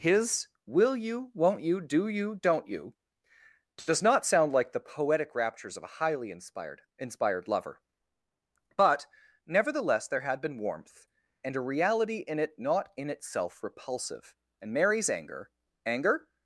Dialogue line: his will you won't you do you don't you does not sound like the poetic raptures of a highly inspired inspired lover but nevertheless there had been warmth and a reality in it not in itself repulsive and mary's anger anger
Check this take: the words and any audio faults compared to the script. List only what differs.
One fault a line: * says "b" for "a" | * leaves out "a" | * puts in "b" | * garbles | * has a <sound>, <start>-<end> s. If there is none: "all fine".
all fine